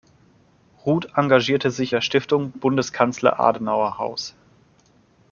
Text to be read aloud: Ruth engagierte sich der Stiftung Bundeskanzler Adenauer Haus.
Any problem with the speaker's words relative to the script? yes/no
no